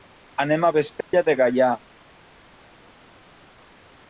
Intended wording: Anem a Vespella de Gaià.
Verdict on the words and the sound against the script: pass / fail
fail